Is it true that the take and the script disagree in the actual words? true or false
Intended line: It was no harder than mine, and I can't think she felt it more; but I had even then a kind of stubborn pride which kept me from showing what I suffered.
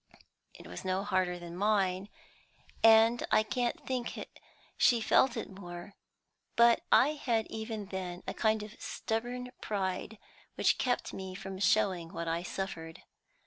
false